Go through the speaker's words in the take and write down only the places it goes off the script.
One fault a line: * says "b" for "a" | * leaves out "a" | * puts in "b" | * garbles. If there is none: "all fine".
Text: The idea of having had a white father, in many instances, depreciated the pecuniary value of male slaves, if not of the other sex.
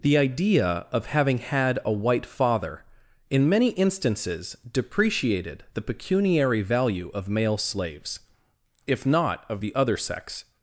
all fine